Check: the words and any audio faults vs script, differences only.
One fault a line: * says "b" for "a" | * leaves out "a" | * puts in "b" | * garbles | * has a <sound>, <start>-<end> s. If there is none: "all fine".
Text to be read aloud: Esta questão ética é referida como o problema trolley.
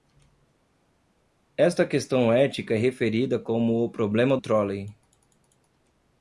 all fine